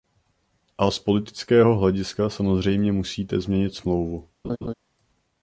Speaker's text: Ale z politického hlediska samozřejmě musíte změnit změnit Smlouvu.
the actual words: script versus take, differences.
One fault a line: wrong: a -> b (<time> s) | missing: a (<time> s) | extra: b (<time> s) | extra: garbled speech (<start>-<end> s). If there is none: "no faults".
wrong: Ale -> A (0.8 s)
missing: změnit (3.8 s)